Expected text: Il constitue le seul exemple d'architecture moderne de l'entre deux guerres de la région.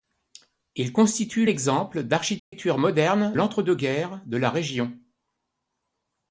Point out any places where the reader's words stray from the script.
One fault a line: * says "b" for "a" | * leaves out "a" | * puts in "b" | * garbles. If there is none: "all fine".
* leaves out "le seul"
* leaves out "de"